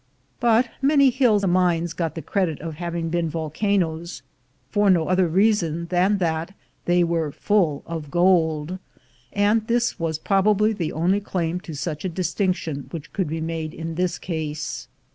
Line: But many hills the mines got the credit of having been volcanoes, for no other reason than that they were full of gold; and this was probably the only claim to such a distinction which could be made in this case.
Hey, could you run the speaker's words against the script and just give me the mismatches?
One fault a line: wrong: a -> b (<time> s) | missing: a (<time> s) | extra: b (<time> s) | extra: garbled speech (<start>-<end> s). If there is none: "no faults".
no faults